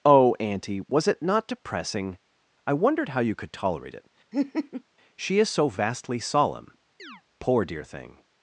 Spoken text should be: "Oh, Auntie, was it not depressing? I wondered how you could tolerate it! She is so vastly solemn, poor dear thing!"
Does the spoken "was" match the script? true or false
true